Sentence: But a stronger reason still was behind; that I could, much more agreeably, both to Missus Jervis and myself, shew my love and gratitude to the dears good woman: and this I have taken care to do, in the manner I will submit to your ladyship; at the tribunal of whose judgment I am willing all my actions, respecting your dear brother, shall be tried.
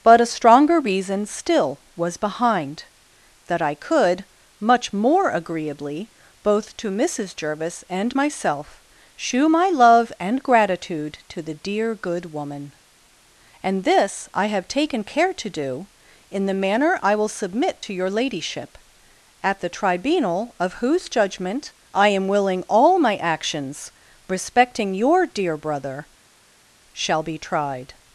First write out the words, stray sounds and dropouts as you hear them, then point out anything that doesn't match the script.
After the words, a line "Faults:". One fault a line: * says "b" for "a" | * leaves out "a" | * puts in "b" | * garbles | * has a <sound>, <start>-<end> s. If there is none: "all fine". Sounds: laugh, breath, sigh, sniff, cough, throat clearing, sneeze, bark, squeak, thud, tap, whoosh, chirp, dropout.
But a stronger reason still was behind; that I could, much more agreeably, both to Missus Jervis and myself, shew my love and gratitude to the dear good woman: and this I have taken care to do, in the manner I will submit to your ladyship; at the tribunal of whose judgment I am willing all my actions, respecting your dear brother, shall be tried.
Faults:
* says "dear" for "dears"